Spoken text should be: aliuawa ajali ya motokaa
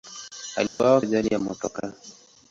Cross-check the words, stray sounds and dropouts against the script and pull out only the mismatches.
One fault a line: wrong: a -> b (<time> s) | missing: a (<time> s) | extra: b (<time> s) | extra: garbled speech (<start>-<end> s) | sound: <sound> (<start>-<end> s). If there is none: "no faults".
sound: dropout (0.7-0.8 s)